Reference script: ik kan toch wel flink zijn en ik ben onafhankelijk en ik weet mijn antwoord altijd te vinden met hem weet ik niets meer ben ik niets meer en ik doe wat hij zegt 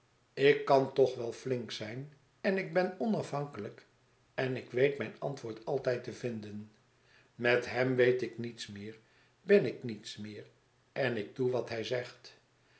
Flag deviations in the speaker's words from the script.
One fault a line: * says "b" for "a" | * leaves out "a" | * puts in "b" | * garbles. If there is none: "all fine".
all fine